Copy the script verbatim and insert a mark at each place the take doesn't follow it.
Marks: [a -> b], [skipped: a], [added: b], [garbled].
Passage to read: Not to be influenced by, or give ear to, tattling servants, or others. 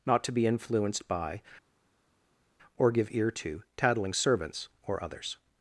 Not to be influenced by, or give ear to, tattling servants, or others.